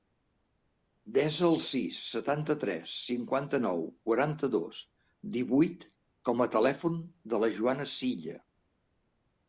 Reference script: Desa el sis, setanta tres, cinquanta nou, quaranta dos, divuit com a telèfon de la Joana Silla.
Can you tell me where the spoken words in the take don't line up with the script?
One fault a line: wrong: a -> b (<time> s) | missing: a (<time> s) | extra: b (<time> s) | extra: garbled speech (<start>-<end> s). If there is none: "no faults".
no faults